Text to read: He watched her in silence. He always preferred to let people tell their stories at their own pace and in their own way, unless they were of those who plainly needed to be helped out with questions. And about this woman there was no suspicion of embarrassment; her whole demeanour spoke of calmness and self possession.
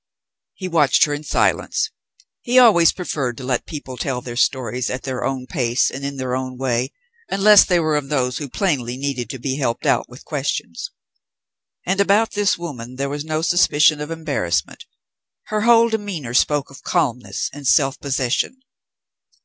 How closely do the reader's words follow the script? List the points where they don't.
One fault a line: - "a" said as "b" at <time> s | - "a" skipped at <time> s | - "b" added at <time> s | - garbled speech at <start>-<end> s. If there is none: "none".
none